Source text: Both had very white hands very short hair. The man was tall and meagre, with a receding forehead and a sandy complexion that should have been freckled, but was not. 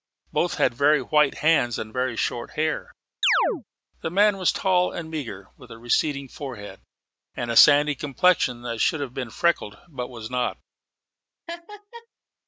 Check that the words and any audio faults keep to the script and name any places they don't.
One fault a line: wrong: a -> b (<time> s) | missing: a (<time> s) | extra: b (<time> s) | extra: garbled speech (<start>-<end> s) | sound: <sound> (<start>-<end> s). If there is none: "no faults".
extra: and (1.8 s)
sound: chirp (3.2-3.6 s)
sound: laugh (11.5-12.1 s)